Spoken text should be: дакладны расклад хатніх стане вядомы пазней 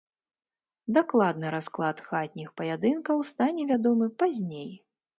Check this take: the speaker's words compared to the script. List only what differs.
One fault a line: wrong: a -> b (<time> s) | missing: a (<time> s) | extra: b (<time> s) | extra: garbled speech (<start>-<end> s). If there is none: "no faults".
extra: паядынкаў (2.6 s)